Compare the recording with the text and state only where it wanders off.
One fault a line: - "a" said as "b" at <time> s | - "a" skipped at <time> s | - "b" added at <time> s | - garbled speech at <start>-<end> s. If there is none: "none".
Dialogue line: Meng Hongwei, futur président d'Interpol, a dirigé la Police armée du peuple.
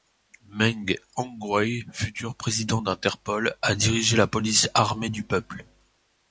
none